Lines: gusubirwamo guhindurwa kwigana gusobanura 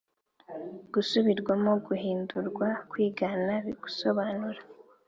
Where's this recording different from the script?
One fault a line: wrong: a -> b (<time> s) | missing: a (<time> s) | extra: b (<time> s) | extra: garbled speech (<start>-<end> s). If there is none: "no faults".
no faults